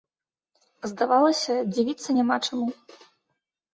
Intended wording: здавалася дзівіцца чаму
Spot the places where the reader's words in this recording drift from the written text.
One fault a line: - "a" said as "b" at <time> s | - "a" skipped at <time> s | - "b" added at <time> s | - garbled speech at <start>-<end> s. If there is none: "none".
- "няма" added at 2.2 s